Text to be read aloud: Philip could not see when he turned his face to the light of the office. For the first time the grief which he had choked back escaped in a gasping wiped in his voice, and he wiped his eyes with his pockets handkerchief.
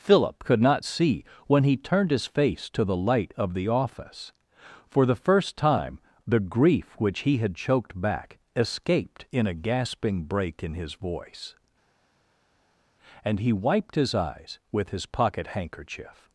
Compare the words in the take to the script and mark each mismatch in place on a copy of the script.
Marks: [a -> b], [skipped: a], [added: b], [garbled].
Philip could not see when he turned his face to the light of the office. For the first time the grief which he had choked back escaped in a gasping [wiped -> break] in his voice, and he wiped his eyes with his [pockets -> pocket] handkerchief.